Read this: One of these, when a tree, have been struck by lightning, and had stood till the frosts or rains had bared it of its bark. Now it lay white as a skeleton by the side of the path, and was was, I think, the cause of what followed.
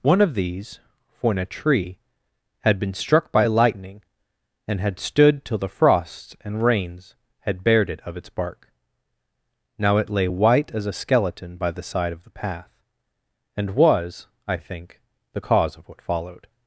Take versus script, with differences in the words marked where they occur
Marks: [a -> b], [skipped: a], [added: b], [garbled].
One of these, when a tree, [have -> had] been struck by lightning, and had stood till the frosts [or -> and] rains had bared it of its bark. Now it lay white as a skeleton by the side of the path, and was [skipped: was,] I think, the cause of what followed.